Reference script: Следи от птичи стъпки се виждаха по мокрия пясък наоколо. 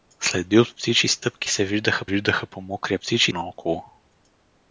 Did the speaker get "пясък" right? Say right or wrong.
wrong